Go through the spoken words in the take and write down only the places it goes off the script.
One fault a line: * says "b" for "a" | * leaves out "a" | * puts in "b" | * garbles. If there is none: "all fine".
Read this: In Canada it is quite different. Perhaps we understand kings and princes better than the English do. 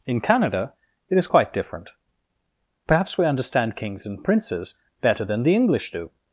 all fine